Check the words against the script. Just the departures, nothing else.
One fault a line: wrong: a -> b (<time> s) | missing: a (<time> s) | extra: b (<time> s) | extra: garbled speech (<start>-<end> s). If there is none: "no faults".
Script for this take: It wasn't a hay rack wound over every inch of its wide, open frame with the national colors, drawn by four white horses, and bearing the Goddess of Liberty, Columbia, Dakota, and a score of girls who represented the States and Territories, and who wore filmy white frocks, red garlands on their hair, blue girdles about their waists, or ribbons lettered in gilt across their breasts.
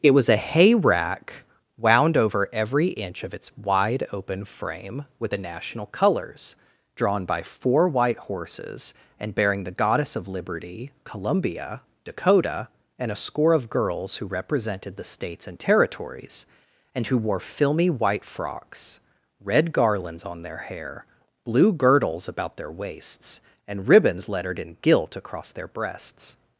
wrong: wasn't -> was (0.1 s)
wrong: or -> and (23.7 s)